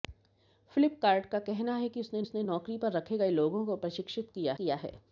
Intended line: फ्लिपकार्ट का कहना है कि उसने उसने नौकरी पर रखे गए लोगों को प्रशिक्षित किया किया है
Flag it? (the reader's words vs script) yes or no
no